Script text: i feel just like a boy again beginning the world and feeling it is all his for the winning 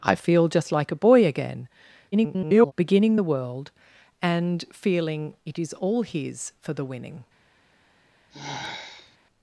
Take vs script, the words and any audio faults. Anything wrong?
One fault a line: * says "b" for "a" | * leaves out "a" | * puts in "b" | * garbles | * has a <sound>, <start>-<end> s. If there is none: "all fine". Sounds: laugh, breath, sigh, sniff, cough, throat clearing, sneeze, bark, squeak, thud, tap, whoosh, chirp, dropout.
* garbles
* has a sigh, 8.3-9.2 s